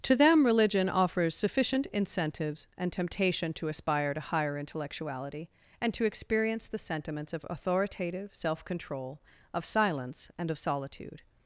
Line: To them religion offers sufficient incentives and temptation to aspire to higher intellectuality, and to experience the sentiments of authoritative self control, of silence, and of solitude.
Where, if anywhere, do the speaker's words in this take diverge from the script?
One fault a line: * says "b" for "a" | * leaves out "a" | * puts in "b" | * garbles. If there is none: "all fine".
all fine